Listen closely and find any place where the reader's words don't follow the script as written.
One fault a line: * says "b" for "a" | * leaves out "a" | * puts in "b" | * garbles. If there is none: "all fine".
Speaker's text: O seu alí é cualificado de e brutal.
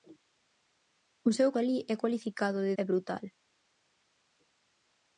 all fine